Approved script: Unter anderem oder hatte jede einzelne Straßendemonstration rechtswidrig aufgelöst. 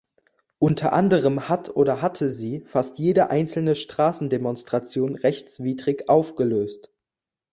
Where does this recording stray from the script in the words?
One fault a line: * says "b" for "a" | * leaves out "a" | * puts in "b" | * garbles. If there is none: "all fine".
* puts in "hat"
* puts in "sie fast"